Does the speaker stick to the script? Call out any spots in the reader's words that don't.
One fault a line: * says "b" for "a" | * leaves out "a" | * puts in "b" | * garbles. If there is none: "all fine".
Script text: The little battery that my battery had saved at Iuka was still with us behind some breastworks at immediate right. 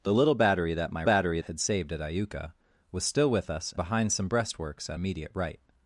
all fine